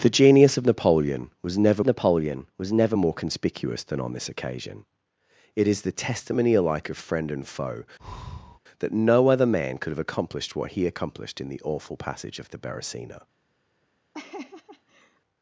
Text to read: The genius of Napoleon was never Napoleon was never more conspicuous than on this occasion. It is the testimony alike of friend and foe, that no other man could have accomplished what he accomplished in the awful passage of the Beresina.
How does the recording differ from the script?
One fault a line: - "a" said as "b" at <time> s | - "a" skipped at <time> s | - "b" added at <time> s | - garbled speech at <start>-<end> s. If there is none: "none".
none